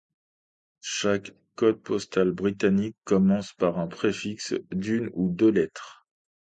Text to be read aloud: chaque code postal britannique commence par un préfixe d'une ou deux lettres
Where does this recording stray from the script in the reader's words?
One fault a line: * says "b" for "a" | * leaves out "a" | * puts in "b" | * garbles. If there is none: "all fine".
all fine